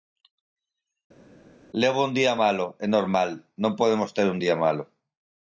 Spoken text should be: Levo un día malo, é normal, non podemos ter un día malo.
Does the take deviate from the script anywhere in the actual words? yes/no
no